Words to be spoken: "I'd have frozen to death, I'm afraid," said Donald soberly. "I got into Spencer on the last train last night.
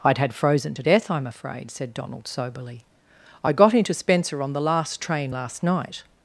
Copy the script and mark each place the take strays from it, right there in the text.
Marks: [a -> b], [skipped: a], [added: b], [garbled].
"I'd [have -> had] frozen to death, I'm afraid," said Donald soberly. "I got into Spencer on the last train last night.